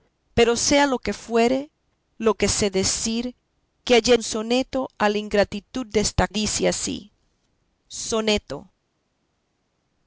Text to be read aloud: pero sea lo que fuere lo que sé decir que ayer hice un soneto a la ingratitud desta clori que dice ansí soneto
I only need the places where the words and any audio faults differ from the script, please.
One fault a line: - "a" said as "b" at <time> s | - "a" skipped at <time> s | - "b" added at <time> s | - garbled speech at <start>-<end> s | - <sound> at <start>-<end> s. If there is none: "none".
- "hice" skipped at 4.2 s
- "clori que" skipped at 6.3 s